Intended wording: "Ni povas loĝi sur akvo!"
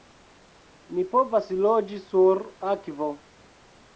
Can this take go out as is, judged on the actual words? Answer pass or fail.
pass